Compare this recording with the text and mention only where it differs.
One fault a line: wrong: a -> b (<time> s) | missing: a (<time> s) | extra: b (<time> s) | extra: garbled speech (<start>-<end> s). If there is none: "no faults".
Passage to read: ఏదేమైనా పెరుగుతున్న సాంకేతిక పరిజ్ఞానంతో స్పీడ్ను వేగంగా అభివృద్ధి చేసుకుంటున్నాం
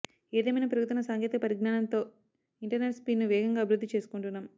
extra: ఇంటర్నెట్ (2.6 s)